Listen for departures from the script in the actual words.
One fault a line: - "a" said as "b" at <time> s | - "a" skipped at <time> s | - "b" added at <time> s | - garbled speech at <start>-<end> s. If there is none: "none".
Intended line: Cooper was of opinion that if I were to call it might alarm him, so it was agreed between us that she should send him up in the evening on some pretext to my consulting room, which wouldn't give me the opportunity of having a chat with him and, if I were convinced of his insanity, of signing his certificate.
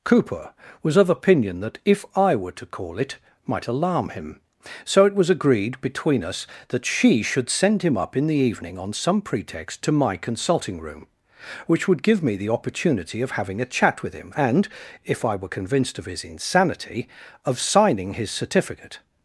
- "wouldn't" said as "would" at 11.9 s